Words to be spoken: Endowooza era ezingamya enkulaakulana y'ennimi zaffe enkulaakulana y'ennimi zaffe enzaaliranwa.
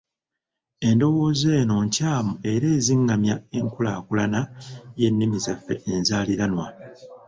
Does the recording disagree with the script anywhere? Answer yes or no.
yes